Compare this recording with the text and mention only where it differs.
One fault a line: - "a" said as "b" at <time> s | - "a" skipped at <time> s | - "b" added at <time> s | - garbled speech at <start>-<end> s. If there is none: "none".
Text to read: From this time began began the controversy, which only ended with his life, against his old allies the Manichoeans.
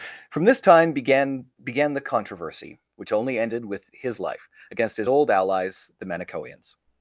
none